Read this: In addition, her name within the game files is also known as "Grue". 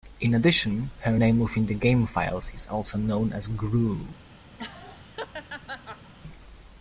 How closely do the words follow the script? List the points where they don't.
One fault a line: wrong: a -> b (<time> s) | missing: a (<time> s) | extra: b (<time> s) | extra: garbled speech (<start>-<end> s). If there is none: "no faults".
no faults